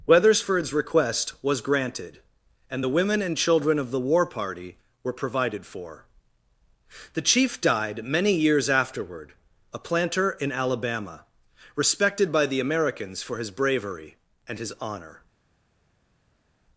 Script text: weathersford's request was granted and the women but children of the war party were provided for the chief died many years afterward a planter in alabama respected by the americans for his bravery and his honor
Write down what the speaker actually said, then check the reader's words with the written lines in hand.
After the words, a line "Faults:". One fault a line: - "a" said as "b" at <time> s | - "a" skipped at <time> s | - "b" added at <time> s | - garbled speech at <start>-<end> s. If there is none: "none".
weathersford's request was granted and the women and children of the war party were provided for the chief died many years afterward a planter in alabama respected by the americans for his bravery and his honor
Faults:
- "but" said as "and" at 3.2 s